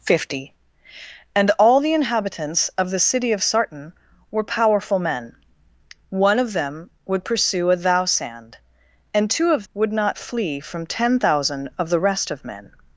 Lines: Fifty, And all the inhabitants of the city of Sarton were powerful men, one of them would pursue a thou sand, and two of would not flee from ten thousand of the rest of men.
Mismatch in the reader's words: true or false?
false